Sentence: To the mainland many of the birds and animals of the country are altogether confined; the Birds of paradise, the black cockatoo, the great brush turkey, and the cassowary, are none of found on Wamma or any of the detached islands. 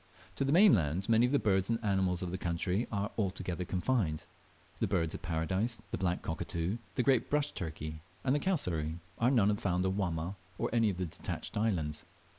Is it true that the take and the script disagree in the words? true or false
false